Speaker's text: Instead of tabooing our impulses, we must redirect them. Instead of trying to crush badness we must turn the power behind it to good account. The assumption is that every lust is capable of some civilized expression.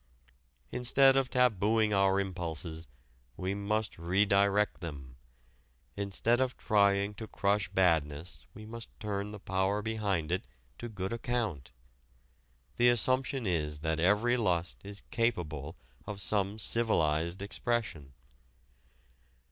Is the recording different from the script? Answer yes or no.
no